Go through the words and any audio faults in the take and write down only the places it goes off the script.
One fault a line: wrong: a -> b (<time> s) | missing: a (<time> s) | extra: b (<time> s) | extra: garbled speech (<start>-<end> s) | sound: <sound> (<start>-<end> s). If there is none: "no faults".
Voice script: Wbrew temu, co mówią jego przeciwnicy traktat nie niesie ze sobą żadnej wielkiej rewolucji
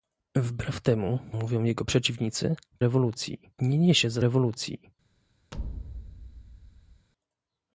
missing: co (1.2 s)
wrong: traktat -> rewolucji (2.8 s)
missing: sobą żadnej wielkiej (4.2 s)
sound: thud (5.5-7.1 s)